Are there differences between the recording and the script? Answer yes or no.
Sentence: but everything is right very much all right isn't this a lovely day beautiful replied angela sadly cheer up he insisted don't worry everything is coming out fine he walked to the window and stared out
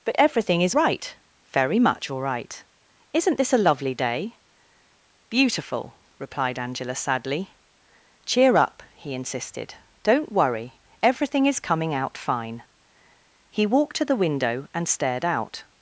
no